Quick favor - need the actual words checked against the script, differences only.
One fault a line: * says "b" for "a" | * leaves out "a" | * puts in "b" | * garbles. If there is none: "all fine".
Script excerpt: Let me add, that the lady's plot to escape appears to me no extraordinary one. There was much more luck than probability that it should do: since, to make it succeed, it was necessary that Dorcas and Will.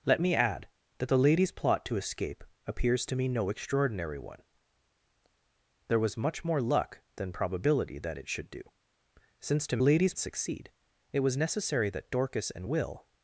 * says "lady's" for "make"